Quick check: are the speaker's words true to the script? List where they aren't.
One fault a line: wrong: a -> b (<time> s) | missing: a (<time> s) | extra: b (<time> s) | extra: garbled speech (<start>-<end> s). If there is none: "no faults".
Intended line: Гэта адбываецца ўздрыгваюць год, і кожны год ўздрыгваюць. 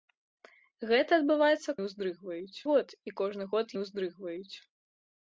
no faults